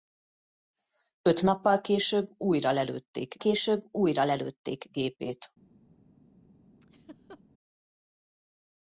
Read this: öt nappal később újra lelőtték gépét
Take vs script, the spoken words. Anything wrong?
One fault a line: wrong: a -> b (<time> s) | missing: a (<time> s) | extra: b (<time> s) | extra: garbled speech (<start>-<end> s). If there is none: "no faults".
extra: később újra lelőtték (3.4 s)